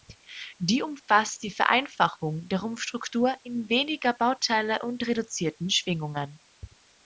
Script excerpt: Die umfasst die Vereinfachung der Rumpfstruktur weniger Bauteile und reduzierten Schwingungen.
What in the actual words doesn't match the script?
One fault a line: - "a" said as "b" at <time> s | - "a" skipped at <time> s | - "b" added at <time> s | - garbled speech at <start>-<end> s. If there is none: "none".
- "in" added at 3.4 s